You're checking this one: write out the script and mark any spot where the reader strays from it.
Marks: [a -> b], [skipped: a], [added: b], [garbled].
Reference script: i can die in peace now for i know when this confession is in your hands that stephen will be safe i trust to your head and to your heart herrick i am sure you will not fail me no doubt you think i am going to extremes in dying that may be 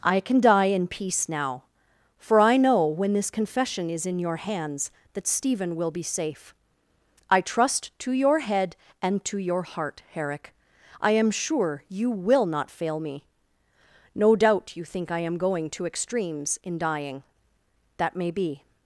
i can die in peace now for i know when this confession is in your hands that stephen will be safe i trust to your head and to your heart herrick i am sure you will not fail me no doubt you think i am going to extremes in dying that may be